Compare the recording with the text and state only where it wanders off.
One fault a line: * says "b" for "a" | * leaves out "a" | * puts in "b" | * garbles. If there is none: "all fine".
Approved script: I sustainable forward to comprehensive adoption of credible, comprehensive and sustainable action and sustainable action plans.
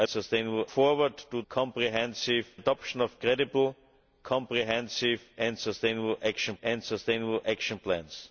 all fine